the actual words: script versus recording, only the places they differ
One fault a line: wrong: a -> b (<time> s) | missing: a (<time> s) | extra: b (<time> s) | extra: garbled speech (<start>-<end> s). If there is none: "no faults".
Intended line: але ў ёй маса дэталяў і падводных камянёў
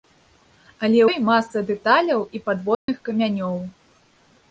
missing: ў (1.0 s)